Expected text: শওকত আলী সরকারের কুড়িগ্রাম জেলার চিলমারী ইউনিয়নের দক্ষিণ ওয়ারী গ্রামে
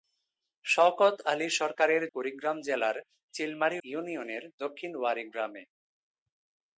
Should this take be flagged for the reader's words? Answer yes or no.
no